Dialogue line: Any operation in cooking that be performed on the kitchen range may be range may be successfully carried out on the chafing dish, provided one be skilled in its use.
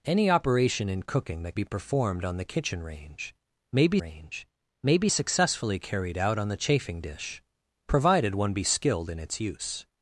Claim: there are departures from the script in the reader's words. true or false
false